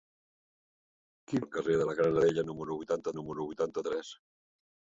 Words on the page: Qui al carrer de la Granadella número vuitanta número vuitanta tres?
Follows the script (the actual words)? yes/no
yes